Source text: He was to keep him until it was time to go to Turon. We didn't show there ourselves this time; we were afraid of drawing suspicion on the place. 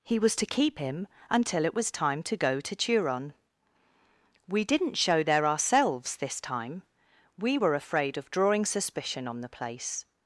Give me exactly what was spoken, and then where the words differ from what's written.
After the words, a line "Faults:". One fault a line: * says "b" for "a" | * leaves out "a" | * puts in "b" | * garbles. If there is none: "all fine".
He was to keep him until it was time to go to Turon. We didn't show there ourselves this time; we were afraid of drawing suspicion on the place.
Faults:
all fine